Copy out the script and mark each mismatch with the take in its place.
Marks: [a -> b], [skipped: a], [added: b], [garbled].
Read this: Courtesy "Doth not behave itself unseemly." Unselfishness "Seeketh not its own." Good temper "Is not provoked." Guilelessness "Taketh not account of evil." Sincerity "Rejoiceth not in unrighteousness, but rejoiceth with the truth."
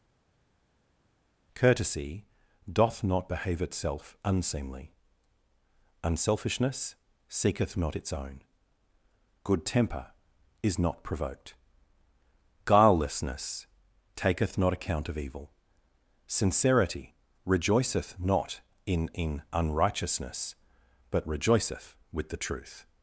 Courtesy "Doth not behave itself unseemly." Unselfishness "Seeketh not its own." Good temper "Is not provoked." Guilelessness "Taketh not account of evil." Sincerity "Rejoiceth not in [added: in] unrighteousness, but rejoiceth with the truth."